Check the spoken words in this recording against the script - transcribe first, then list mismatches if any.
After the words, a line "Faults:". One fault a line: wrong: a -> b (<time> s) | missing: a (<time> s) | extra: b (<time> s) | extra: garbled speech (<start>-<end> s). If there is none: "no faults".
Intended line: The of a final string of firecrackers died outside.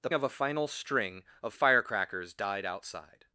The of a final string of firecrackers died outside.
Faults:
no faults